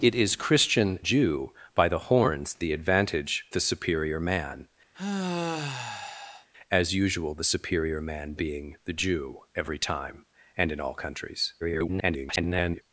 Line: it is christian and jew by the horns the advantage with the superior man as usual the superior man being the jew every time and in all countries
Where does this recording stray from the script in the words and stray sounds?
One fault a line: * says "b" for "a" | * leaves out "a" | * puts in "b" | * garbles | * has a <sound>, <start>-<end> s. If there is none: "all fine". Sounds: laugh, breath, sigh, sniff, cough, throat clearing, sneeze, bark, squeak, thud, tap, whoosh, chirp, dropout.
* leaves out "and"
* leaves out "with"
* has a sigh, 4.9-6.5 s
* garbles